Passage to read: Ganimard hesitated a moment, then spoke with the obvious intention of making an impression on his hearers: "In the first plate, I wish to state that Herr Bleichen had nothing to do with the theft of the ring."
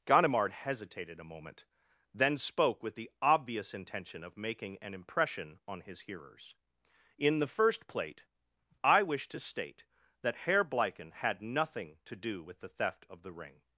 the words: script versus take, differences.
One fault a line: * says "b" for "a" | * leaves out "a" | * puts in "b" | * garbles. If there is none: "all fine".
all fine